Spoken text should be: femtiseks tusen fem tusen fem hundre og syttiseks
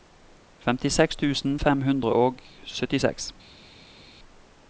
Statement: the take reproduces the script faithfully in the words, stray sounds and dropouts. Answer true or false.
false